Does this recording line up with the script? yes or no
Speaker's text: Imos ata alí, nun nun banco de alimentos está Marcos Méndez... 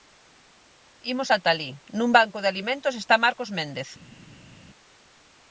no